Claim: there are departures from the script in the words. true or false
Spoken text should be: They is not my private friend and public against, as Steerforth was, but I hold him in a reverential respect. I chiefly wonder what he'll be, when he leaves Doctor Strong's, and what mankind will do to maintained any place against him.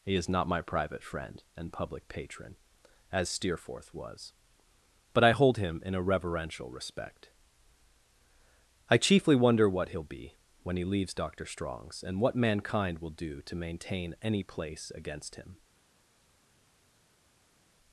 true